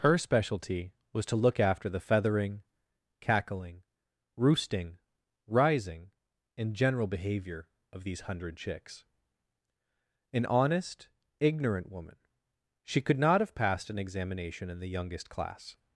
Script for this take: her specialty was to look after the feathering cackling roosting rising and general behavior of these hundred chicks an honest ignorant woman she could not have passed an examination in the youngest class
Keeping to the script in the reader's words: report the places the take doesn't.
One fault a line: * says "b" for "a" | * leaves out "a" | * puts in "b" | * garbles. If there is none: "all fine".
all fine